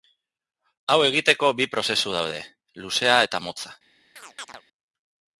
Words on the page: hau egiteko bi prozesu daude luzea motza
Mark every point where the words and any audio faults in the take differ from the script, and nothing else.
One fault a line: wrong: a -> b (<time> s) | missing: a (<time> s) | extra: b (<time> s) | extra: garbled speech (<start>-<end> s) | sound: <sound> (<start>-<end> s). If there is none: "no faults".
extra: eta (3.3 s)
sound: chirp (4.2-4.6 s)